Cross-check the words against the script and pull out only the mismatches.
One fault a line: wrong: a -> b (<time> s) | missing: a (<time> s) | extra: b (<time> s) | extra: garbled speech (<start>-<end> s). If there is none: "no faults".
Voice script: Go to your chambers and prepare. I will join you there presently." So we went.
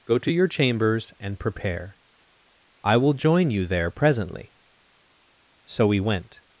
no faults